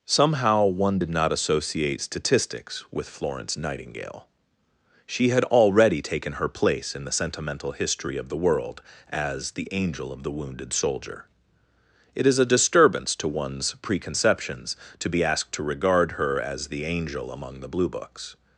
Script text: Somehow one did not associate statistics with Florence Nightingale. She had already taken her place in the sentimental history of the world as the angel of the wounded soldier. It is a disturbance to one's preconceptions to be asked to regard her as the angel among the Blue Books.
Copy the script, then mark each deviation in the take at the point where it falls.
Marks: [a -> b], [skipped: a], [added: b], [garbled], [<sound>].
Somehow one did not associate statistics with Florence Nightingale. She had already taken her place in the sentimental history of the world as the angel of the wounded soldier. It is a disturbance to one's preconceptions to be asked to regard her as the angel among the Blue Books.